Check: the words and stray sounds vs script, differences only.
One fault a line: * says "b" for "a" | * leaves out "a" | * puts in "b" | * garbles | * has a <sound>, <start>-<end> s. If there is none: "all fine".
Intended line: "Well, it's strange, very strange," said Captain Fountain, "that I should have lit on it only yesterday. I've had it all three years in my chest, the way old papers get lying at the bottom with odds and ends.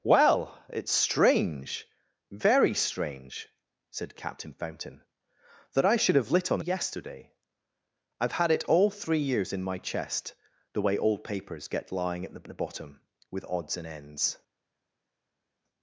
* leaves out "it only"
* puts in "the"